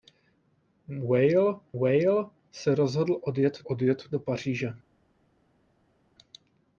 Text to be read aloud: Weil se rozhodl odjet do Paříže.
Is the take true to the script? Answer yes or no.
no